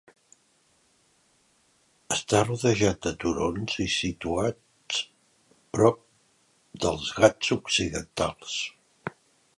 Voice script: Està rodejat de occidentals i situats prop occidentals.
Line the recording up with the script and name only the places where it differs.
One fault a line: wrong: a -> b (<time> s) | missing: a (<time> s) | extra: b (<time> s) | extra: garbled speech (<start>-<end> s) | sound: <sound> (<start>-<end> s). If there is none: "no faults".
wrong: occidentals -> turons (3.2 s)
extra: dels Ghats (6.9 s)